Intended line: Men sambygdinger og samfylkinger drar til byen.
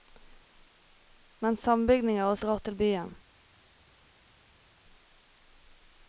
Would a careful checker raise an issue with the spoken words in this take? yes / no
yes